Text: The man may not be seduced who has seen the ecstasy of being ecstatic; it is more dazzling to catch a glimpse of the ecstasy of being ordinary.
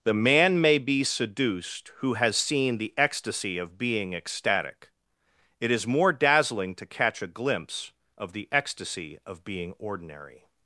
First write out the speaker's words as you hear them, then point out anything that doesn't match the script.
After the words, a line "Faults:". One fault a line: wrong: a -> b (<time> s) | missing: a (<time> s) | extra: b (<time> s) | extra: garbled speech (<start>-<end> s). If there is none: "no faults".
The man may be seduced who has seen the ecstasy of being ecstatic; it is more dazzling to catch a glimpse of the ecstasy of being ordinary.
Faults:
missing: not (0.8 s)